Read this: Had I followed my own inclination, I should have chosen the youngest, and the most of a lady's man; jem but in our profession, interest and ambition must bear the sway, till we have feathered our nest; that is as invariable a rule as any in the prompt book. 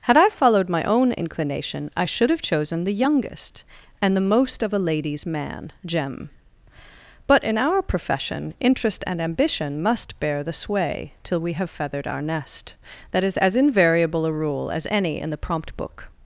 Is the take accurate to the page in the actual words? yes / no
yes